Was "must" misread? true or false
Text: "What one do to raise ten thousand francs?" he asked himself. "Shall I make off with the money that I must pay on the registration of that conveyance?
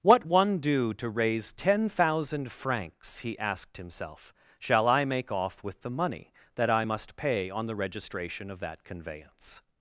false